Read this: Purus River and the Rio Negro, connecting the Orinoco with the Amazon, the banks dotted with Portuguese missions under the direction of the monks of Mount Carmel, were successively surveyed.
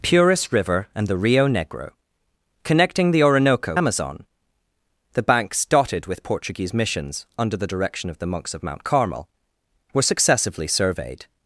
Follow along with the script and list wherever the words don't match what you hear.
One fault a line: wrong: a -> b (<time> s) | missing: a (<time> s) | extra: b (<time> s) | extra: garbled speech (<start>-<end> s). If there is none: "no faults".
missing: with the (3.8 s)